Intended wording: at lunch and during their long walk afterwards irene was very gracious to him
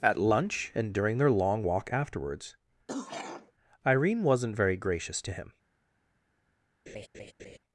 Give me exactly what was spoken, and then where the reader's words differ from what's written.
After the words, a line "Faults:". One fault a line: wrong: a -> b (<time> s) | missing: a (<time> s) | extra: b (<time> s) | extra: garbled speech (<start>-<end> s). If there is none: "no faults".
at lunch and during their long walk afterwards irene wasn't very gracious to him
Faults:
wrong: was -> wasn't (4.2 s)